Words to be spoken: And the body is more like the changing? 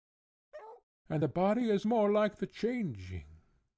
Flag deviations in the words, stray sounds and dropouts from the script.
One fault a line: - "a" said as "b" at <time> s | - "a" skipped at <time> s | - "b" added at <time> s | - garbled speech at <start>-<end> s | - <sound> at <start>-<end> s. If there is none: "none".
- bark at 0.5-0.8 s